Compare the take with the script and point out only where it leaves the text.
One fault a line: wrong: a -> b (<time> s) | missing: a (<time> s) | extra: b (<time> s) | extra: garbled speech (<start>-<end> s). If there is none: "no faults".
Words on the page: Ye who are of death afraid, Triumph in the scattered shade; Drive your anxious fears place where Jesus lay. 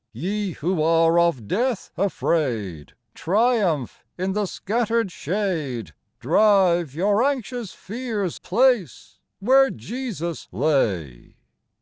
no faults